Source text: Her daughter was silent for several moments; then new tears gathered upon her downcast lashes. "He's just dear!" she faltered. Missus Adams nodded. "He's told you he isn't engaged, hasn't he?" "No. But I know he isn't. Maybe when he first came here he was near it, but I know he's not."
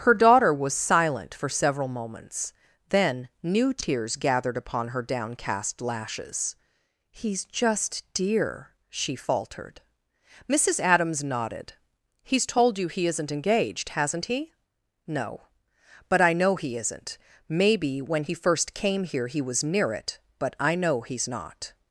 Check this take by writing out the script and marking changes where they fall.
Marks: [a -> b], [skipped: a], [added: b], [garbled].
Her daughter was silent for several moments; then new tears gathered upon her downcast lashes. "He's just dear!" she faltered. Missus Adams nodded. "He's told you he isn't engaged, hasn't he?" "No. But I know he isn't. Maybe when he first came here he was near it, but I know he's not."